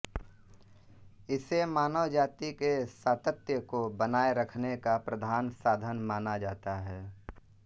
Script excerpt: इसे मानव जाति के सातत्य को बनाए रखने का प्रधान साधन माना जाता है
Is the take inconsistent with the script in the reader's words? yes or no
no